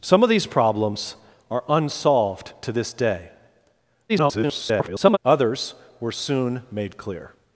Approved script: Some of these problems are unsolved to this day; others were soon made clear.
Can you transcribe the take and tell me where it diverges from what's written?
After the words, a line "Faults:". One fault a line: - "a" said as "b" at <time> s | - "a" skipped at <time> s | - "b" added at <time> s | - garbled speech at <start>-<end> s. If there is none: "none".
Some of these problems are unsolved to this day; [garbled] others were soon made clear.
Faults:
- garbled speech at 4.1-5.2 s